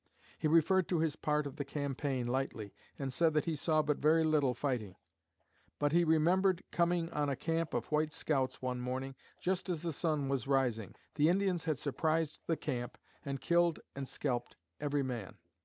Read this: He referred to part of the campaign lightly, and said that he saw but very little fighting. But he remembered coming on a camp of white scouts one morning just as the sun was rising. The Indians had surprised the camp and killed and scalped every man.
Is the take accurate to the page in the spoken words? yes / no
no